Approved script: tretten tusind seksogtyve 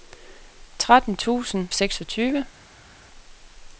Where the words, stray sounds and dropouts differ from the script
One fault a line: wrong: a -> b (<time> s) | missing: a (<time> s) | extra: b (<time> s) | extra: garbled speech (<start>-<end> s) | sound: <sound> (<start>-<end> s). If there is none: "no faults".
no faults